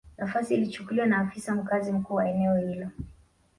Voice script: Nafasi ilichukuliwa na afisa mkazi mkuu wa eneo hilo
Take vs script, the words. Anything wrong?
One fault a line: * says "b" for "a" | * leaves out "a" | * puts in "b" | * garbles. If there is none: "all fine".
all fine